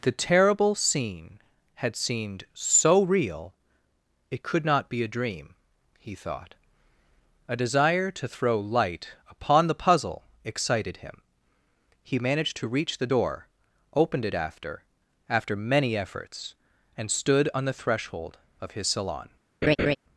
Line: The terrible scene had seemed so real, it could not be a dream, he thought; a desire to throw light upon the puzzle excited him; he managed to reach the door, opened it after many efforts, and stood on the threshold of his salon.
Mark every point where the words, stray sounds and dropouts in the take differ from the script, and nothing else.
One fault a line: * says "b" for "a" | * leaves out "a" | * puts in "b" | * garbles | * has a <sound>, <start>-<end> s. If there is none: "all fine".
* puts in "after"
* has a laugh, 19.6-20.0 s